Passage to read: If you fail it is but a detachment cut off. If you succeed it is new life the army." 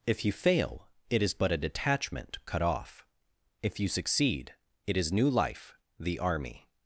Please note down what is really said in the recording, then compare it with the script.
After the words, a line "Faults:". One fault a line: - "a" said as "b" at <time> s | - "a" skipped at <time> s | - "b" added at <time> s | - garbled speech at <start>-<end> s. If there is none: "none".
If you fail it is but a detachment cut off. If you succeed it is new life the army."
Faults:
none